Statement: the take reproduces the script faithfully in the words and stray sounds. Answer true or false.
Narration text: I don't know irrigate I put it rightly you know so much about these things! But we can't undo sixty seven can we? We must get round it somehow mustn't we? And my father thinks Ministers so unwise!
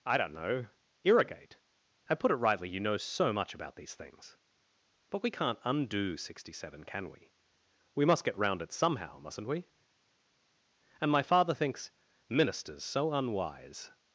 true